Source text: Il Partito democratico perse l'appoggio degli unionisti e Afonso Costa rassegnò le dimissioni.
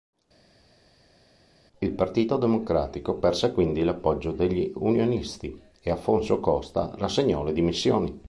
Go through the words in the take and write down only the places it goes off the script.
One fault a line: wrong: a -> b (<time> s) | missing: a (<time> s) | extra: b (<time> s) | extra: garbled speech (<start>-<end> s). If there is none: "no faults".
extra: quindi (3.5 s)